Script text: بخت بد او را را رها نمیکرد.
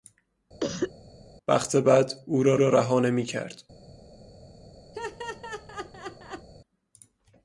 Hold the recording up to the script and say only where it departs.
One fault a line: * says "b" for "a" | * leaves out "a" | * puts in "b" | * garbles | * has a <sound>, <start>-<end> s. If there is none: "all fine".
* has a cough, 0.6-0.9 s
* has a laugh, 4.9-6.5 s